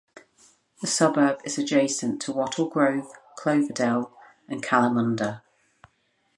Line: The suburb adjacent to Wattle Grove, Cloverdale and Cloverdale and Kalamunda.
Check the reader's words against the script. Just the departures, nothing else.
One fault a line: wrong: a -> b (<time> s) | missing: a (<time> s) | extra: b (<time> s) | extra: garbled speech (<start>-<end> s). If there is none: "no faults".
extra: is (1.4 s)
missing: Cloverdale and (4.6 s)